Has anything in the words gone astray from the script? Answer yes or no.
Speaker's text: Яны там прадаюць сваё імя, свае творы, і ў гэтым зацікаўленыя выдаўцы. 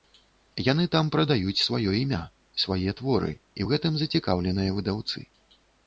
no